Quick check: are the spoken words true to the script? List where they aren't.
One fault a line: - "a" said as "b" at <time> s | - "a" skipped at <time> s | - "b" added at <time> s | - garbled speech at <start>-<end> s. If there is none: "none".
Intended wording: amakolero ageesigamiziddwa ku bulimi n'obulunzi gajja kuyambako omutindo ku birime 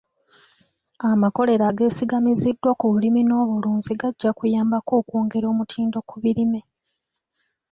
- "okwongera" added at 5.0 s